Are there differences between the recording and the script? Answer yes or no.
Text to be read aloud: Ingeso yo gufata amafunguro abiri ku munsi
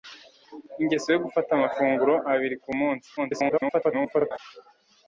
yes